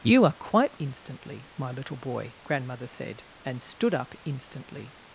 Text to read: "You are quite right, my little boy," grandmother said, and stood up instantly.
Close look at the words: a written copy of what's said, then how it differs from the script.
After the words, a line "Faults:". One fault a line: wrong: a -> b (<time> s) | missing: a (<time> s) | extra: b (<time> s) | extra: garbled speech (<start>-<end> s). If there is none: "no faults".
"You are quite instantly, my little boy," grandmother said, and stood up instantly.
Faults:
wrong: right -> instantly (0.8 s)